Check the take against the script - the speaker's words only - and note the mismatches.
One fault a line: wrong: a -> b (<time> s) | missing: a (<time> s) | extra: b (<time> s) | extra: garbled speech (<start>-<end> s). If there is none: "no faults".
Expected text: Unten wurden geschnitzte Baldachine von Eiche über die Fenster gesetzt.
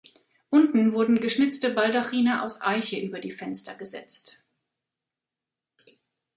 wrong: von -> aus (2.4 s)